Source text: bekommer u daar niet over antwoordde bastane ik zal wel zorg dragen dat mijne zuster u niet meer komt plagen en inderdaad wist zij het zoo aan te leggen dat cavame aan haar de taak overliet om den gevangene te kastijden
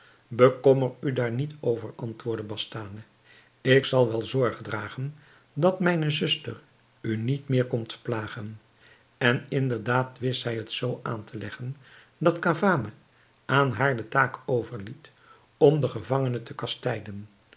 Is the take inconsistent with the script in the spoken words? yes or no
no